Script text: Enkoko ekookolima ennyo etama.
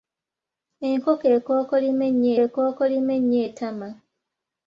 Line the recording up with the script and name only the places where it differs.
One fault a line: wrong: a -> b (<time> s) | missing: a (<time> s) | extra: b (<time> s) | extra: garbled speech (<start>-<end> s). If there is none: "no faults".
extra: ekookolima ennyo (2.4 s)